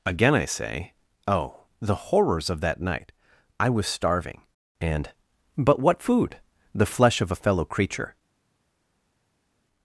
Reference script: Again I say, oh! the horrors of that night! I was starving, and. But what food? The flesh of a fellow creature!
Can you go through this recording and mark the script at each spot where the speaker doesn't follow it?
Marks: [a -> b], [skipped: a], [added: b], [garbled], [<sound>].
Again I say, oh! the horrors of that night! I was starving, and. But what food? The flesh of a fellow creature!